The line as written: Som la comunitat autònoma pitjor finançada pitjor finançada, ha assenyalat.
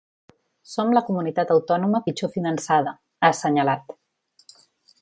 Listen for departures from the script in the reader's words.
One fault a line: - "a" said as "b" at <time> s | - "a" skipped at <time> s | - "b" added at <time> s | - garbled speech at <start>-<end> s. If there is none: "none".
- "pitjor finançada" skipped at 2.9 s